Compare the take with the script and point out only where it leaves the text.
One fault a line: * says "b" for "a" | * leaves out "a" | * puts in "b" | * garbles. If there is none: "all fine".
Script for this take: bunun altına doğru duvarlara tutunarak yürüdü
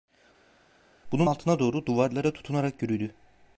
all fine